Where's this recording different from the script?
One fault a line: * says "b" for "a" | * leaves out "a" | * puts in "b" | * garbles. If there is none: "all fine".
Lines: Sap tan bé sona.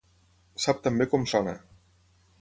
* puts in "com"